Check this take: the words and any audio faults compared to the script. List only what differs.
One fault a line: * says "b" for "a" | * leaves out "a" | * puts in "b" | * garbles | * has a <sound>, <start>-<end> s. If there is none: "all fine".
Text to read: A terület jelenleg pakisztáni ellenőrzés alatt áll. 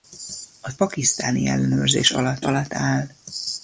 * leaves out "terület jelenleg"
* puts in "alatt"